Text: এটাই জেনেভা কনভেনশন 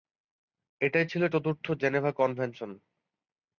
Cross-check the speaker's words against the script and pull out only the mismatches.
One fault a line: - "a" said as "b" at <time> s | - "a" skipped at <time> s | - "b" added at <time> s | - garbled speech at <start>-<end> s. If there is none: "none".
- "ছিল চতুর্থ" added at 1.0 s